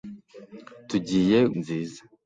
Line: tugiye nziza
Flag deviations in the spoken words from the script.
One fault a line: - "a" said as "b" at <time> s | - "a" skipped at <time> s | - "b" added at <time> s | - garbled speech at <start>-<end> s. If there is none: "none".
none